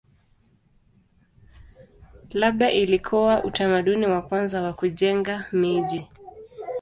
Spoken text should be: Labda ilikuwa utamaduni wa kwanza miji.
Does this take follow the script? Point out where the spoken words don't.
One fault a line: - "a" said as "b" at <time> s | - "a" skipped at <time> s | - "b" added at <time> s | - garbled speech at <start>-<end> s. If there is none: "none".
- "wa kujenga" added at 4.6 s